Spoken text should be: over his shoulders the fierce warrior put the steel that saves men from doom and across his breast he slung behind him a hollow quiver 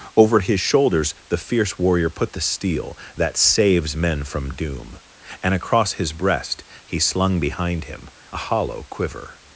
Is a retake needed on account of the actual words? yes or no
no